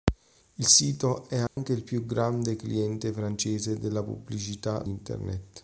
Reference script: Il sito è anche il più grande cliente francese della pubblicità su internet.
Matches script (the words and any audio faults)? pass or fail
fail